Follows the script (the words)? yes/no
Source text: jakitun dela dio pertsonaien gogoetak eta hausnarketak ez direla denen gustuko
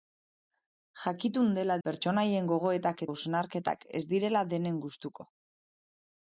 no